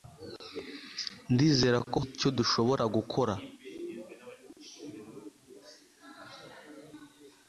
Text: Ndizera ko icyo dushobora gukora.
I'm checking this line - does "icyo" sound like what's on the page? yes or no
yes